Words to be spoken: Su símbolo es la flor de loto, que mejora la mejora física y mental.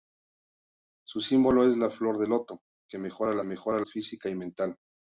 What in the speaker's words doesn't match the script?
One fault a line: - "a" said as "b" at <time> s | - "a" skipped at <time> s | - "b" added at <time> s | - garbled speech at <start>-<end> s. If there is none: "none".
none